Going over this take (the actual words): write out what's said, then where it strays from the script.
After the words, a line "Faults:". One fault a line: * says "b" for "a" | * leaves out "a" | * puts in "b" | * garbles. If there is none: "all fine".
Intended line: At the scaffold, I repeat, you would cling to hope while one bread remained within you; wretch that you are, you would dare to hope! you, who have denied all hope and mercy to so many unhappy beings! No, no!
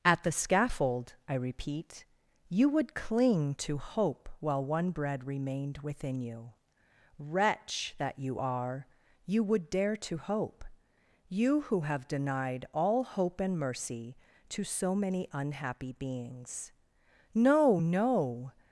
At the scaffold, I repeat, you would cling to hope while one bread remained within you; wretch that you are, you would dare to hope! you, who have denied all hope and mercy to so many unhappy beings! No, no!
Faults:
all fine